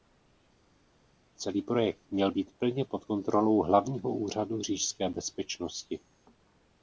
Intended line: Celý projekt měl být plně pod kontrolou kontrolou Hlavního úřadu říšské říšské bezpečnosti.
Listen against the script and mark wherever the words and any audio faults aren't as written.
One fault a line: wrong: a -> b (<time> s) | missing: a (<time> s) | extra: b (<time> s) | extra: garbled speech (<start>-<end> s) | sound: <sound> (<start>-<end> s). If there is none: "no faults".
missing: kontrolou (3.6 s)
missing: říšské (5.1 s)